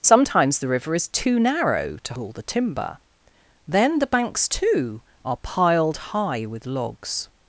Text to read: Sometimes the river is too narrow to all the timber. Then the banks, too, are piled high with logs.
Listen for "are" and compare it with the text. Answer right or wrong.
right